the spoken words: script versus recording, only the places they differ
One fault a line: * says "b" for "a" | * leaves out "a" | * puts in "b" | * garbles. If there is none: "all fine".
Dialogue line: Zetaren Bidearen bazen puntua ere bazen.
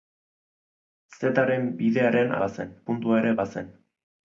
all fine